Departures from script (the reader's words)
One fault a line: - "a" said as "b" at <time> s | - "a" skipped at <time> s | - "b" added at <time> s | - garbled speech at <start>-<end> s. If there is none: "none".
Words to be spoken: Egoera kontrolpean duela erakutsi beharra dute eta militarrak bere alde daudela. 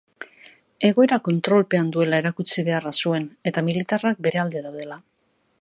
- "dute" said as "zuen" at 3.0 s